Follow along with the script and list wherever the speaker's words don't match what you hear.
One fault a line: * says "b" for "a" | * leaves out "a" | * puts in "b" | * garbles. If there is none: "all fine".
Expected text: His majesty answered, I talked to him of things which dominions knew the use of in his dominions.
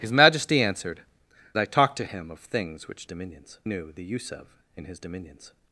all fine